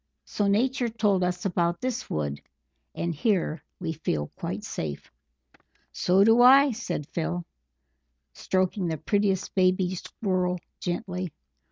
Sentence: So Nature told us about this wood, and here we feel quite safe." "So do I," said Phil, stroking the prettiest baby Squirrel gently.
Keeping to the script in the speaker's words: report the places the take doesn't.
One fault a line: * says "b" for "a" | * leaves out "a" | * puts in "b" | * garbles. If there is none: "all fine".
all fine